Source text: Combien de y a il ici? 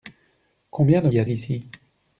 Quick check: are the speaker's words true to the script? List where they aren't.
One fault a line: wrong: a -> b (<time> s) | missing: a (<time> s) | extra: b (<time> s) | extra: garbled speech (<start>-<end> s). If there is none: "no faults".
no faults